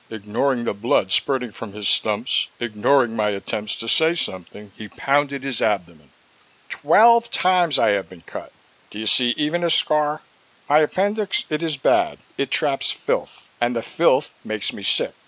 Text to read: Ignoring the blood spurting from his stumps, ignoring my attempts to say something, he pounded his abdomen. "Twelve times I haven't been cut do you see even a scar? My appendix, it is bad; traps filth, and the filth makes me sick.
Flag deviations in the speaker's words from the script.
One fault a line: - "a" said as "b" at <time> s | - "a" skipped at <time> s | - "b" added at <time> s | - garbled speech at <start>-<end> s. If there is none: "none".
- "haven't" said as "have" at 7.9 s
- "it" added at 12.4 s